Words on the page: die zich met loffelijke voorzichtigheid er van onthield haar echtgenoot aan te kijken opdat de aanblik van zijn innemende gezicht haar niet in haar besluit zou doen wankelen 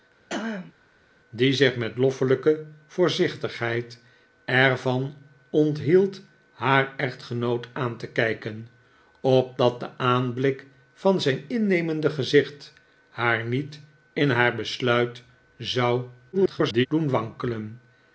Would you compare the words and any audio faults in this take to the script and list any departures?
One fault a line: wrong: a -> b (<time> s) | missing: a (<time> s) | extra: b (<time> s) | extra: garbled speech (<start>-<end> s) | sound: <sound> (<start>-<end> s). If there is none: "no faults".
sound: throat clearing (0.3-0.7 s)
extra: garbled speech (16.3-16.9 s)